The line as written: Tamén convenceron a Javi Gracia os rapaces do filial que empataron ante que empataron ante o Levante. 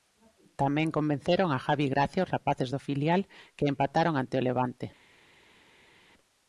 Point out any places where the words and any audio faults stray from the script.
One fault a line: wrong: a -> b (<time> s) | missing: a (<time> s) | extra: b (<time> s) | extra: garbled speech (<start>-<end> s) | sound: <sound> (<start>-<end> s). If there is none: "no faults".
missing: que empataron ante (4.4 s)